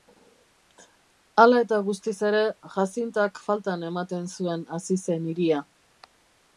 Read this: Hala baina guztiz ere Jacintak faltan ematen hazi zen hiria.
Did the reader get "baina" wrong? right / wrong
wrong